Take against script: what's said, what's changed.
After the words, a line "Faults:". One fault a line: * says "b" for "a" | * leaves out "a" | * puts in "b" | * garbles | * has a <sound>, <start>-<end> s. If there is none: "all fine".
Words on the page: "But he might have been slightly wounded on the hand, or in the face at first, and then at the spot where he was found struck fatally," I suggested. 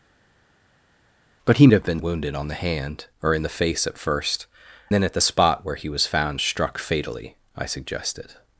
"But he have been wounded on the hand, or in the face at first, then at the spot where he was found struck fatally," I suggested.
Faults:
* leaves out "might"
* leaves out "slightly"
* leaves out "and"